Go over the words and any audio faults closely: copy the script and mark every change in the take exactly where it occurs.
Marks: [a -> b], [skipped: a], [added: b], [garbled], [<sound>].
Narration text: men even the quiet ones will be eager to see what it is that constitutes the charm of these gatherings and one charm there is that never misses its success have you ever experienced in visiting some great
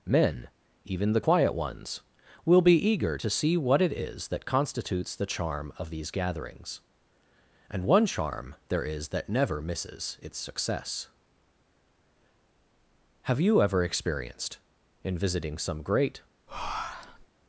men even the quiet ones will be eager to see what it is that constitutes the charm of these gatherings and one charm there is that never misses its success have you ever experienced in visiting some great [breath]